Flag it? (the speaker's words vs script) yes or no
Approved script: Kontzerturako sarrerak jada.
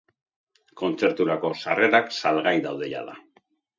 yes